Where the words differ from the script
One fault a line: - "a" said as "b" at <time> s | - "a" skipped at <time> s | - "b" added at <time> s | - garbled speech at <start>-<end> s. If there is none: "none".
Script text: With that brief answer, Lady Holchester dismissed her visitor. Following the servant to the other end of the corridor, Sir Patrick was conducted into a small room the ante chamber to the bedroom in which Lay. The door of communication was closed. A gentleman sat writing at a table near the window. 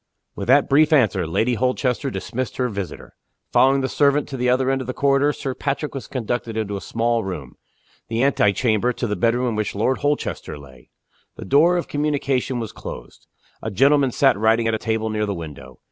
- "Lord Holchester" added at 9.7 s